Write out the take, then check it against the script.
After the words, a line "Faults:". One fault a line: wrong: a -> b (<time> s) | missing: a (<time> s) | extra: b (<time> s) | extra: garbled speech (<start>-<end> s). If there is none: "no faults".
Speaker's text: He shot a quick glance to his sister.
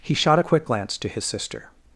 He shot a quick glance to his sister.
Faults:
no faults